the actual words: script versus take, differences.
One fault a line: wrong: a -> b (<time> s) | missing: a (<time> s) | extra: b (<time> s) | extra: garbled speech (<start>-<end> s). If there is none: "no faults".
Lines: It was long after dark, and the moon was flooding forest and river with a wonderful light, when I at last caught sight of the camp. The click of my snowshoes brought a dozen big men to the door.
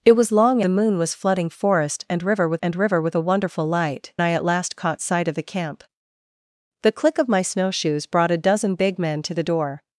missing: after dark and (0.6 s)
extra: and river with (2.6 s)
missing: when (4.1 s)